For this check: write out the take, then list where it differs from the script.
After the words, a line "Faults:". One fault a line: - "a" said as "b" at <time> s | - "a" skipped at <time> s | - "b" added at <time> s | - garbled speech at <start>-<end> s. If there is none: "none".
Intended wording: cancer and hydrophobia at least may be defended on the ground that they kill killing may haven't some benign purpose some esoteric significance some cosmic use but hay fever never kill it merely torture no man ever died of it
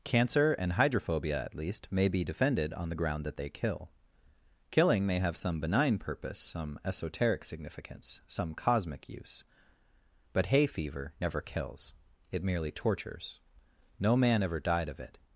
cancer and hydrophobia at least may be defended on the ground that they kill killing may have some benign purpose some esoteric significance some cosmic use but hay fever never kills it merely tortures no man ever died of it
Faults:
- "haven't" said as "have" at 5.2 s
- "kill" said as "kills" at 11.4 s
- "torture" said as "tortures" at 12.7 s